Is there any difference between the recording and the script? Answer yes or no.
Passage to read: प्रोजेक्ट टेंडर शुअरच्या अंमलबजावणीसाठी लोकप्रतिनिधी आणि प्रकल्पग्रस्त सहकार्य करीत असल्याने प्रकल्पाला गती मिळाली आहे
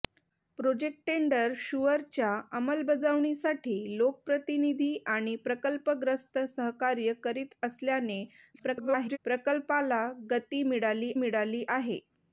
yes